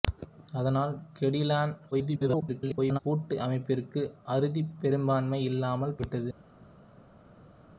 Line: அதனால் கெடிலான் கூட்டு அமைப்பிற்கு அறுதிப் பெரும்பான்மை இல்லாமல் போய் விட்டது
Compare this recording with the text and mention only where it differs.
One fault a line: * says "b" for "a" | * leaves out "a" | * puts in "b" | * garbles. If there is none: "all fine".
* garbles
* leaves out "போய்"